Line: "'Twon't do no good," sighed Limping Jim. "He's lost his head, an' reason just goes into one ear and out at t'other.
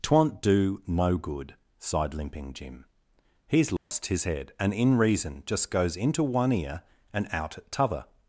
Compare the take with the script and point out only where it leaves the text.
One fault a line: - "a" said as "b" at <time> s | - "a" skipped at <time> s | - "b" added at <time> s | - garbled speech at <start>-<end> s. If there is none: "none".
- "an" said as "and in" at 4.6 s